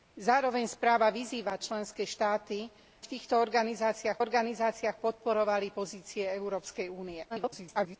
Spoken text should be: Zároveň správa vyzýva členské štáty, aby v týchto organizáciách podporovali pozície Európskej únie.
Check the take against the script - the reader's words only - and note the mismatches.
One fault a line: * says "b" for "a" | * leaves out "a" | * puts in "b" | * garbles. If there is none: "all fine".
* leaves out "aby"
* puts in "organizáciách"
* garbles